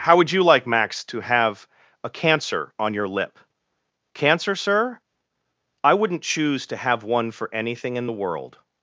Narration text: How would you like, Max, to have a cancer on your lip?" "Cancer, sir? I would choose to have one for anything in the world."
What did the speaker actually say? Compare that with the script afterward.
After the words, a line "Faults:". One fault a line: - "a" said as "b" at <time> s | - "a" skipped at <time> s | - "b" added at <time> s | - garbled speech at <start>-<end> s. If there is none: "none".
How would you like, Max, to have a cancer on your lip?" "Cancer, sir? I wouldn't choose to have one for anything in the world."
Faults:
- "would" said as "wouldn't" at 5.9 s